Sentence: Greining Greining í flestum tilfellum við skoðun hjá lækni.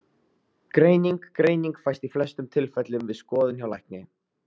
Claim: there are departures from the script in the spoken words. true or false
true